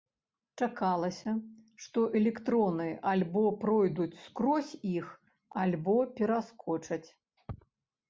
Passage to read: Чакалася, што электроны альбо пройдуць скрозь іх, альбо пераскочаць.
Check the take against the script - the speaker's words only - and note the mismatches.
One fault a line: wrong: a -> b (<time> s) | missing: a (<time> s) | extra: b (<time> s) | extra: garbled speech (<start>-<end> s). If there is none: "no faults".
no faults